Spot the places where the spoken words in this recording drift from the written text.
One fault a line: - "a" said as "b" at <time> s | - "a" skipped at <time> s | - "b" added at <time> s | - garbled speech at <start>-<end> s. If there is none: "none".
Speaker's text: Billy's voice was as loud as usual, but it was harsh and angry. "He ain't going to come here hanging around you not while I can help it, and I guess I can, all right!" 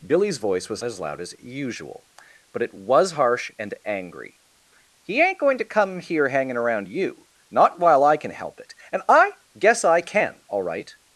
none